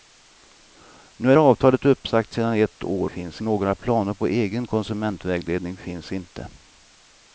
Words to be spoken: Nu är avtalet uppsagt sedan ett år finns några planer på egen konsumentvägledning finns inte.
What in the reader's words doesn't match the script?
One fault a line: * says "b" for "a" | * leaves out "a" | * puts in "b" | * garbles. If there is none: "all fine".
all fine